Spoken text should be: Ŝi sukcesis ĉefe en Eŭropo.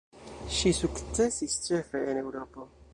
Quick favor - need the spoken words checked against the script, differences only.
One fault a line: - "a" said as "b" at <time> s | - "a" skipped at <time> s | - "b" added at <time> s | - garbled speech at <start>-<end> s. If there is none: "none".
none